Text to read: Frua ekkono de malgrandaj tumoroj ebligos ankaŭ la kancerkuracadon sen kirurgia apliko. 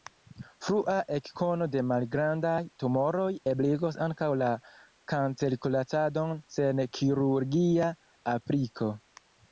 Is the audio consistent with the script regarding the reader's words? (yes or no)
yes